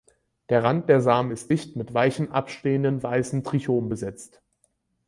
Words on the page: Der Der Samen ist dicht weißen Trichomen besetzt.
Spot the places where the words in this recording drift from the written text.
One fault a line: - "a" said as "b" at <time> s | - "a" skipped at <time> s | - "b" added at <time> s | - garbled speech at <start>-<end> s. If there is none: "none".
- "Rand" added at 0.6 s
- "mit weichen abstehenden" added at 1.7 s